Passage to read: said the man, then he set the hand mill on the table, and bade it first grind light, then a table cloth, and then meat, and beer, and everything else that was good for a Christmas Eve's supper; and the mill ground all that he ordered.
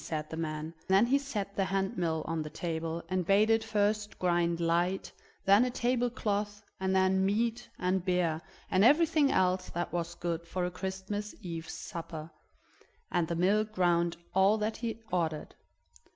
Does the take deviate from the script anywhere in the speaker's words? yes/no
no